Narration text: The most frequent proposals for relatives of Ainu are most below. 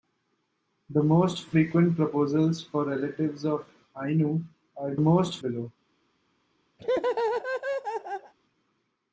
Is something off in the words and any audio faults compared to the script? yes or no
yes